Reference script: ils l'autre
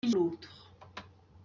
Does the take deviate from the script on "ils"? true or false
false